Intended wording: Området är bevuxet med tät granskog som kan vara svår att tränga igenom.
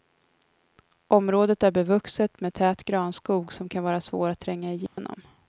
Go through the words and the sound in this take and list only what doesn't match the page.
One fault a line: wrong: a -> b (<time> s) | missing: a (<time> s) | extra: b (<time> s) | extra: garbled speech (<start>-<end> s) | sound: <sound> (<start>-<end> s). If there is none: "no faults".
sound: dropout (4.9-5.0 s)